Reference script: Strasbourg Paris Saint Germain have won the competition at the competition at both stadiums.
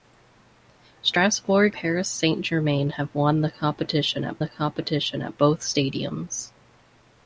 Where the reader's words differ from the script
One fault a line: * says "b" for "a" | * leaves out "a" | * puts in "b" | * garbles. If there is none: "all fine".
all fine